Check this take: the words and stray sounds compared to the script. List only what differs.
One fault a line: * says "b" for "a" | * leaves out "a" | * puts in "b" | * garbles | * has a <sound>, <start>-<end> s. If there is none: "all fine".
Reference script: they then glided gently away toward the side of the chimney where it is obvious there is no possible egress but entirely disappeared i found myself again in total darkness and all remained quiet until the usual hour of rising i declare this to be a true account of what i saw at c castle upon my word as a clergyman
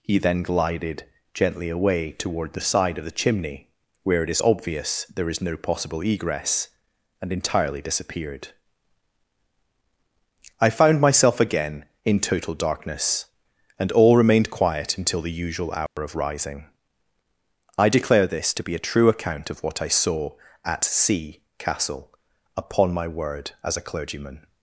* says "he" for "they"
* says "and" for "but"
* has a dropout, 15.9-16.0 s